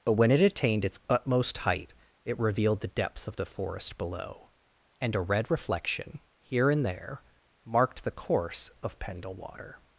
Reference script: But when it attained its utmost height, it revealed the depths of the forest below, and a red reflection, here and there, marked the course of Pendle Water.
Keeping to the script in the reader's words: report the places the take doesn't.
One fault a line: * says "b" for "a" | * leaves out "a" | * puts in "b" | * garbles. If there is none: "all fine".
all fine